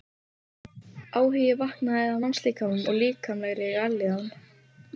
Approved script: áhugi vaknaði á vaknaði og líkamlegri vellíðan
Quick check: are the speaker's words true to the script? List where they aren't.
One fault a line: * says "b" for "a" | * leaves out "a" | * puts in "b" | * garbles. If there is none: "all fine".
* says "mannslíkamanum" for "vaknaði"